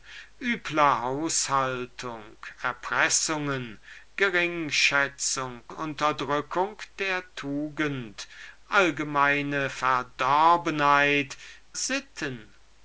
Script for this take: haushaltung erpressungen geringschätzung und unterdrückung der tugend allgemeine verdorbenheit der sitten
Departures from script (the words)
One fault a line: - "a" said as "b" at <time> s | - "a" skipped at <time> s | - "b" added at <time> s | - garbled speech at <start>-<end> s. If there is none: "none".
- "und" skipped at 5.6 s
- "der" skipped at 11.4 s